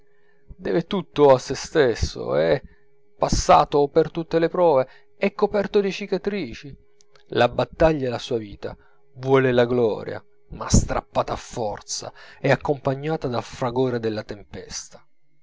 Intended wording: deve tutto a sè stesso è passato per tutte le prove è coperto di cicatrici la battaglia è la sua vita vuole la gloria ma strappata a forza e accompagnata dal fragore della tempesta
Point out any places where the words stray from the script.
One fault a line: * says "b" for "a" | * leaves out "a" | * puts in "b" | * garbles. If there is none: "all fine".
all fine